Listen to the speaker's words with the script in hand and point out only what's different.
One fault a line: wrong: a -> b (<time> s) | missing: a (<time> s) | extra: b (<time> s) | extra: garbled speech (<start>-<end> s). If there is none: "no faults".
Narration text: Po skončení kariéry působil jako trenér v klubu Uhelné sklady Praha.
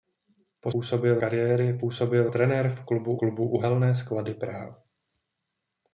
wrong: skončení -> působil (0.7 s)
missing: jako (2.3 s)
extra: klubu (3.2 s)